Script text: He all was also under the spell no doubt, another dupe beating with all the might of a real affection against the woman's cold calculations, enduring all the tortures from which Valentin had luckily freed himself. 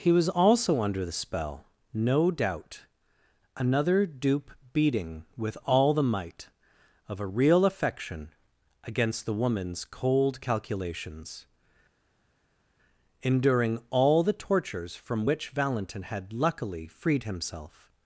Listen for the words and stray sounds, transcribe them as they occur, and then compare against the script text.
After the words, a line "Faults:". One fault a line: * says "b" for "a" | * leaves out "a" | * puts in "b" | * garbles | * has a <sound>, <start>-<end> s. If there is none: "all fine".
He was also under the spell no doubt, another dupe beating with all the might of a real affection against the woman's cold calculations, enduring all the tortures from which Valentin had luckily freed himself.
Faults:
* leaves out "all"